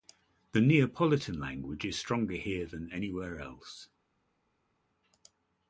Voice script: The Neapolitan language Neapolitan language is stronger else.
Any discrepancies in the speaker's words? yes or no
yes